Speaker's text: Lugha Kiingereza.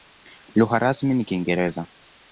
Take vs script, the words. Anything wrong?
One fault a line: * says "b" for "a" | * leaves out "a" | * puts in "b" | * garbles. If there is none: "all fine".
* puts in "rasmi ni"